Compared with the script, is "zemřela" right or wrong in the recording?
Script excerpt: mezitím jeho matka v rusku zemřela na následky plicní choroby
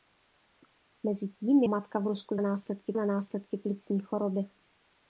wrong